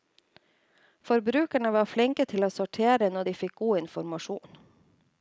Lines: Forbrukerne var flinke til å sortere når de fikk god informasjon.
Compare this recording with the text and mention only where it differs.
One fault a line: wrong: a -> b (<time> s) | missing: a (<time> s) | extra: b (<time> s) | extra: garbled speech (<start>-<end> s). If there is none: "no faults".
no faults